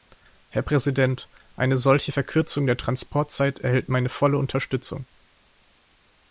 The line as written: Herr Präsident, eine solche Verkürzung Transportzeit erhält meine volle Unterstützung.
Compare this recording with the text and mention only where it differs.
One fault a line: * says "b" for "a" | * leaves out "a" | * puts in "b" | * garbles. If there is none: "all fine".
* puts in "der"